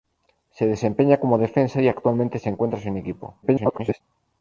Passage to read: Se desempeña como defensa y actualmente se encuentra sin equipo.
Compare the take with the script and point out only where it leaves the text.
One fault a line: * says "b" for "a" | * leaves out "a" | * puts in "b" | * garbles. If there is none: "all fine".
* garbles